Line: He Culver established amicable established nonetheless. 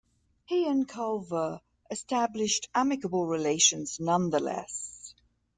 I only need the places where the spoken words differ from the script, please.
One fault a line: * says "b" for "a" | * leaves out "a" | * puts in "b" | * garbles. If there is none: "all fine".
* puts in "and"
* says "relations" for "established"